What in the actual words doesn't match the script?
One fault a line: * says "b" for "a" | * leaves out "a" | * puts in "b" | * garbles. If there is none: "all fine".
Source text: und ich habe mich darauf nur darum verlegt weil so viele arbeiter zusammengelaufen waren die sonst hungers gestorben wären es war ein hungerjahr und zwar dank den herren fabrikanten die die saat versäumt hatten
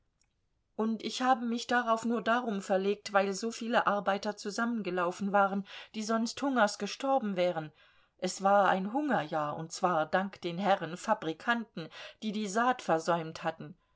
all fine